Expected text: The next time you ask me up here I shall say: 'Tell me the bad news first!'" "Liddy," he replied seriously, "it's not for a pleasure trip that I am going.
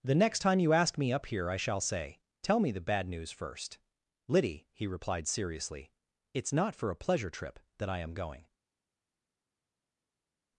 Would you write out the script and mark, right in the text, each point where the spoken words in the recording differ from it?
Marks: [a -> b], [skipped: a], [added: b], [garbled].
The next time you ask me up here I shall say: 'Tell me the bad news first!'" "Liddy," he replied seriously, "it's not for a pleasure trip that I am going.